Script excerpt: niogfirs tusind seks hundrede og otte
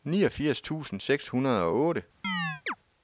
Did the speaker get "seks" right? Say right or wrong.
right